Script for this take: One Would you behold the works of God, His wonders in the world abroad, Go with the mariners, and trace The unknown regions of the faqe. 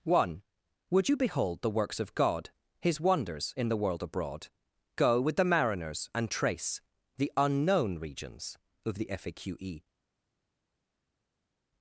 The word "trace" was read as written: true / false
true